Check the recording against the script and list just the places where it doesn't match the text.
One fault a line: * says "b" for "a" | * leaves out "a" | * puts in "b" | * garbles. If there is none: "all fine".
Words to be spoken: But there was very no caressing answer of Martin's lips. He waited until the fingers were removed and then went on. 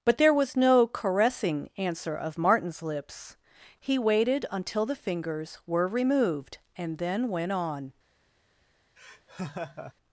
* leaves out "very"